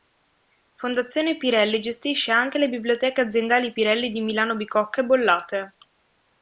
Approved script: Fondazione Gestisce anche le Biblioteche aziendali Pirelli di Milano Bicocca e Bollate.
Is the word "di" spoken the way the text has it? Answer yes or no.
yes